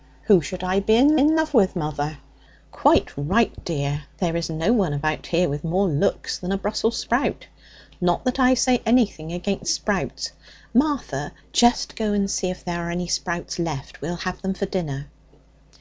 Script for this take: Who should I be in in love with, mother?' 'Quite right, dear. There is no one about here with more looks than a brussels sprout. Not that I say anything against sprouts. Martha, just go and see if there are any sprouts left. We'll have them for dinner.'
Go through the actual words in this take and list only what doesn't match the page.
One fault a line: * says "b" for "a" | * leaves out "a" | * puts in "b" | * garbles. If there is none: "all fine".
all fine